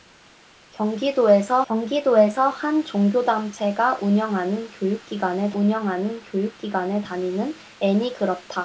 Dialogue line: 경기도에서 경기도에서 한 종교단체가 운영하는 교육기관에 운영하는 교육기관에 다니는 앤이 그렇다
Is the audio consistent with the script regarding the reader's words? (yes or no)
yes